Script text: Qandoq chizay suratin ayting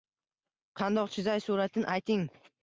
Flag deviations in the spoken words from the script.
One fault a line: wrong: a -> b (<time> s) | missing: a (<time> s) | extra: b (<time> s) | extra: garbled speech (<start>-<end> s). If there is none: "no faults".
no faults